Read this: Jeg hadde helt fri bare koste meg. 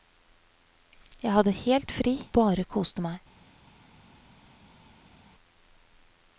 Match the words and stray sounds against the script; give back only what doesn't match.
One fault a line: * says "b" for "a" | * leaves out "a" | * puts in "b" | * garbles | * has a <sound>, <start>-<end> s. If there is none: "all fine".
all fine